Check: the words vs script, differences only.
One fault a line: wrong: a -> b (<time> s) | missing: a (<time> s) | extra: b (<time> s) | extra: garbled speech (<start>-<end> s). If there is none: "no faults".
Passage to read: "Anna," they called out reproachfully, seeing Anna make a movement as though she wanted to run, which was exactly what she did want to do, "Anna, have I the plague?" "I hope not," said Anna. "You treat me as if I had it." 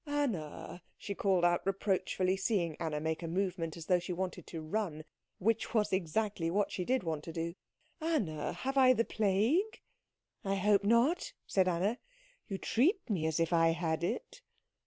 wrong: they -> she (1.0 s)